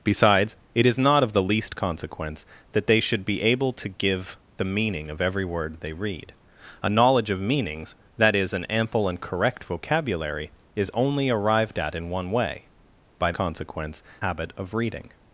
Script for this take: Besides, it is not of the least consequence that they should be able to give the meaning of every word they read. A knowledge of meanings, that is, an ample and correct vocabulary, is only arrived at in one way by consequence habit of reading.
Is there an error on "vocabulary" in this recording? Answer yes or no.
no